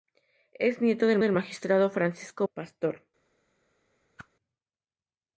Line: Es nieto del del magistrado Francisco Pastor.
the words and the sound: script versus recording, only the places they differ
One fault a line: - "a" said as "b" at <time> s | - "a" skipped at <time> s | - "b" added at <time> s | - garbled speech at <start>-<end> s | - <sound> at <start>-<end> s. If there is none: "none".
- whoosh at 4.2-4.3 s